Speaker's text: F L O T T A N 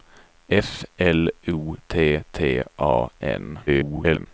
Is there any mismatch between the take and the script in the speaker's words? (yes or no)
yes